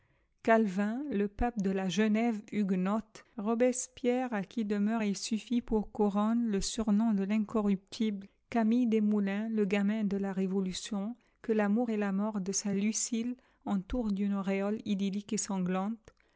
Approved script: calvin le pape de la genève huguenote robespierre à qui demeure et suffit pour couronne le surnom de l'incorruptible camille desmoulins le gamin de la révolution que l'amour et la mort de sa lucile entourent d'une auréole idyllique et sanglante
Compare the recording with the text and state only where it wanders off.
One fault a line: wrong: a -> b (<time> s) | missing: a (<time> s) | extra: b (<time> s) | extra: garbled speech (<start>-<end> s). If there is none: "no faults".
no faults